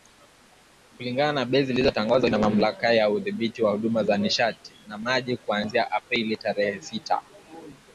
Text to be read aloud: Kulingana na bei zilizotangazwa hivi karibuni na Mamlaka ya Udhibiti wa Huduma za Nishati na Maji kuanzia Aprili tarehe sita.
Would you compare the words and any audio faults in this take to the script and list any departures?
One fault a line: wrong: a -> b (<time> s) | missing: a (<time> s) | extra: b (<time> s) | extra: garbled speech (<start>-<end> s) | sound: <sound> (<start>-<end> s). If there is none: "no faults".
missing: hivi karibuni (2.3 s)